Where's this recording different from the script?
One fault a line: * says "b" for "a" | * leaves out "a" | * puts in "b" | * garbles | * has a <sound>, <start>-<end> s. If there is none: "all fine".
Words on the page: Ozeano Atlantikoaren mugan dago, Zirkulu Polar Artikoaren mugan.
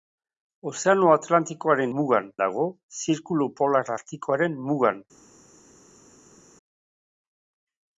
all fine